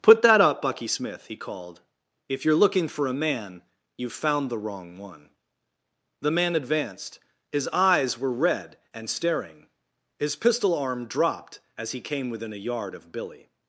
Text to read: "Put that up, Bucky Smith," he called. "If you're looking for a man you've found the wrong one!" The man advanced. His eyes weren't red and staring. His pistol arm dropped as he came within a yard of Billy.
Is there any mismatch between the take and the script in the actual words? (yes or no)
yes